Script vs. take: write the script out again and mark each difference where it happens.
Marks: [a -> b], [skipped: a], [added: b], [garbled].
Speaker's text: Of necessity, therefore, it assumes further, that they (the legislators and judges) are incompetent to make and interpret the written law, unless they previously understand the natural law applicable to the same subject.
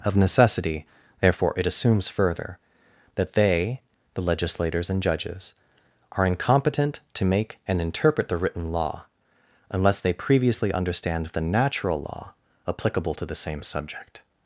Of necessity, therefore, it assumes further, that they (the legislators and judges) are incompetent to make and interpret the written law, unless they previously understand the natural law applicable to the same subject.